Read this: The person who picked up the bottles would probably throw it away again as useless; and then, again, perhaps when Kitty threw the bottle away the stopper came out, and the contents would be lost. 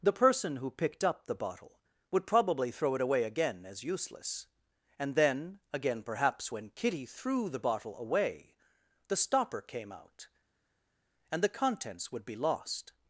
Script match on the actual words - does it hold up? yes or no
no